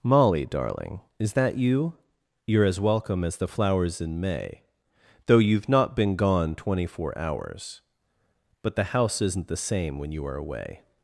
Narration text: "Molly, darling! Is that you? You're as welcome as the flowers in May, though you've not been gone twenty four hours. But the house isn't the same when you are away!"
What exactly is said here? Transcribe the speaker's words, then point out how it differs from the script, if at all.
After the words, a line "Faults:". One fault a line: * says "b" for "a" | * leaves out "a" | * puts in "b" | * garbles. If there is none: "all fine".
"Molly, darling! Is that you? You're as welcome as the flowers in May, though you've not been gone twenty four hours. But the house isn't the same when you are away!"
Faults:
all fine